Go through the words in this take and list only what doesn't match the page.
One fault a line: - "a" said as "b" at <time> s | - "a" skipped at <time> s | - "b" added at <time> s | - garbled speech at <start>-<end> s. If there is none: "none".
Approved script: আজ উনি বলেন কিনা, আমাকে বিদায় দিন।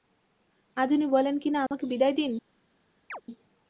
none